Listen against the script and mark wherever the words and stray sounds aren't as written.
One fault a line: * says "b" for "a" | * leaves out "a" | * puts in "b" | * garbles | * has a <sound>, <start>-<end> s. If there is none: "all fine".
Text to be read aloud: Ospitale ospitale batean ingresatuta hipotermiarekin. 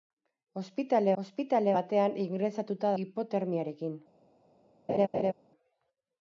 * has a laugh, 4.9-5.3 s